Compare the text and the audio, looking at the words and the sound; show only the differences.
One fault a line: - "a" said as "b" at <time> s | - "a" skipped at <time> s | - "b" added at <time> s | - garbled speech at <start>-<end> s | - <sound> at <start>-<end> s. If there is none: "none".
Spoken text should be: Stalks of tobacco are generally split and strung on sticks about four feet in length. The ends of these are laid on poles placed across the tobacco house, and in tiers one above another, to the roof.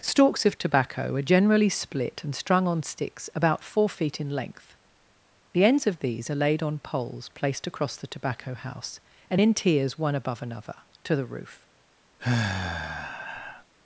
- sigh at 12.2-13.6 s